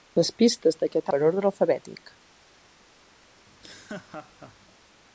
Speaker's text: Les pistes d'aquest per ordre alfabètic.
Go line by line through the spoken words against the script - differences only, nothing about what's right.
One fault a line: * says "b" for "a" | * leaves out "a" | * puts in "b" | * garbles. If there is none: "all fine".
all fine